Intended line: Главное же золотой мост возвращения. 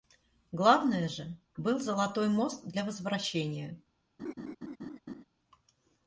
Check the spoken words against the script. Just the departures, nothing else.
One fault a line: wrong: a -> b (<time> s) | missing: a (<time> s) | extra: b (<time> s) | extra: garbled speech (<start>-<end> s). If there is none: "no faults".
extra: был (1.6 s)
extra: для (2.6 s)